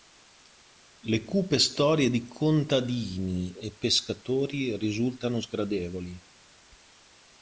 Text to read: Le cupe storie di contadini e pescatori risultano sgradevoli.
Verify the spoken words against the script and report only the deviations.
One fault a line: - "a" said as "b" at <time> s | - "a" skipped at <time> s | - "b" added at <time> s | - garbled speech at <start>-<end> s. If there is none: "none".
none